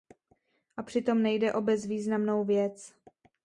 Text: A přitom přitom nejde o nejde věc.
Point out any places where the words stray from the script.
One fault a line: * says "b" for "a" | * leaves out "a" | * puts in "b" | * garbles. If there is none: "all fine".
* leaves out "přitom"
* says "bezvýznamnou" for "nejde"